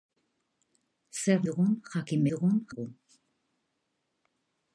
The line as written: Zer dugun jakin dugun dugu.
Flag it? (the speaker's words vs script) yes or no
no